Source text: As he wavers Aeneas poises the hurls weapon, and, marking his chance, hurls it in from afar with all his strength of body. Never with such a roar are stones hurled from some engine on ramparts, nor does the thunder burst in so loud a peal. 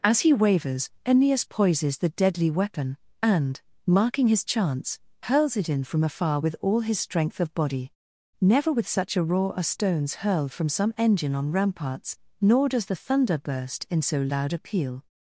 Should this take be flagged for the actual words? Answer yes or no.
yes